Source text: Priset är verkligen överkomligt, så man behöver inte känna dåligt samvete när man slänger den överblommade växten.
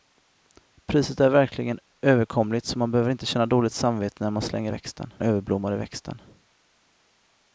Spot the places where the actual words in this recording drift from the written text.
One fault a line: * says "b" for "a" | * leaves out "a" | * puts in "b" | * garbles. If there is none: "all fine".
* says "växten" for "den"